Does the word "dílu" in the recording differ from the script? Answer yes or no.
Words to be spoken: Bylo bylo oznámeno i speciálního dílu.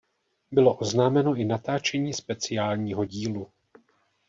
no